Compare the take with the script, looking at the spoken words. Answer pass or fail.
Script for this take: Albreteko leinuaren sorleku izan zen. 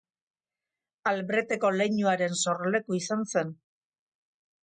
pass